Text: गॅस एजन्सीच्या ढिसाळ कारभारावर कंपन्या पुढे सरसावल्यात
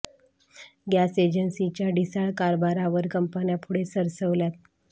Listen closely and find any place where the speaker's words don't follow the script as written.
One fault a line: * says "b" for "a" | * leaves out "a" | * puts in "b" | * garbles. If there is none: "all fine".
all fine